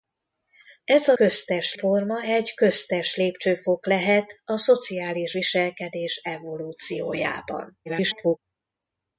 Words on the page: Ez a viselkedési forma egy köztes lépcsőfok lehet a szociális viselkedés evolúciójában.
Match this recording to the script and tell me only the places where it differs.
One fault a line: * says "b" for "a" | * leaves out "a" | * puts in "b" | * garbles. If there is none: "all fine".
* says "köztes" for "viselkedési"
* garbles